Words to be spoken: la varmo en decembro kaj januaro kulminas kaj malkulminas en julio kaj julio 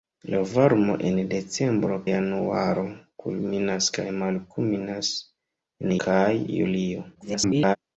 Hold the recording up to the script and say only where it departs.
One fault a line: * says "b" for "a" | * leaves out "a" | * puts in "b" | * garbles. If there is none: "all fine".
* leaves out "kaj"
* leaves out "julio"
* garbles